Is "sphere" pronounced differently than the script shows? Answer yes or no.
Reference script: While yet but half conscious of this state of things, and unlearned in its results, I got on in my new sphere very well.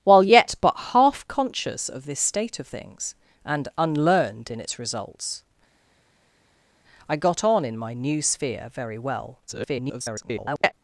no